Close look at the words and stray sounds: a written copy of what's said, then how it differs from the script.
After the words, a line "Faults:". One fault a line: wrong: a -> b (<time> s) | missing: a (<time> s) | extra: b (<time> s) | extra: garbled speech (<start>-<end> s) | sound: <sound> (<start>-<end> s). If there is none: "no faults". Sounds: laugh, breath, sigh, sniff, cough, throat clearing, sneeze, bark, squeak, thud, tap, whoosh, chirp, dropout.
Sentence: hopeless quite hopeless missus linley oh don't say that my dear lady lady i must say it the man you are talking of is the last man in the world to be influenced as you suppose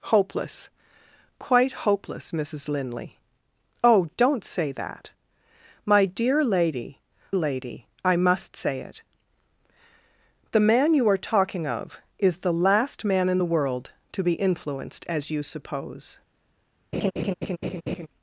hopeless quite hopeless missus linley oh don't say that my dear lady lady i must say it the man you are talking of is the last man in the world to be influenced as you suppose
Faults:
sound: laugh (16.9-18.1 s)